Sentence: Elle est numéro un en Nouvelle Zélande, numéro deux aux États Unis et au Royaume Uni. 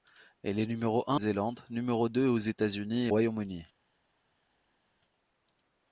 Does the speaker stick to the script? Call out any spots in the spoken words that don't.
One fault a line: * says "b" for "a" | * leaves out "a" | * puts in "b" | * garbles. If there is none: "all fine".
* leaves out "en Nouvelle"
* leaves out "au"